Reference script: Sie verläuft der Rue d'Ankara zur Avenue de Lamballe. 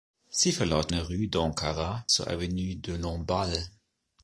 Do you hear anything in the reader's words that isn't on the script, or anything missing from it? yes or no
no